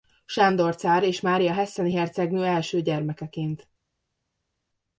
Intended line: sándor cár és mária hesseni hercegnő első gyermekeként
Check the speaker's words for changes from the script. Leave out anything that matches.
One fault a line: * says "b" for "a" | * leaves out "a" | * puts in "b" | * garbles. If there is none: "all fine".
all fine